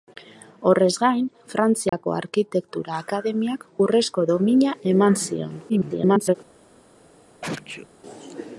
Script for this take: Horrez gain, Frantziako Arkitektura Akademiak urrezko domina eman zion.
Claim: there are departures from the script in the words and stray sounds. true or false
true